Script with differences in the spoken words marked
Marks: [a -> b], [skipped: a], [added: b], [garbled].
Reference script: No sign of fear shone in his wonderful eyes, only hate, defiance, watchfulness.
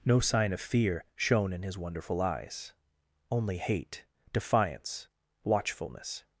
No sign of fear shone in his wonderful eyes, only hate, defiance, watchfulness.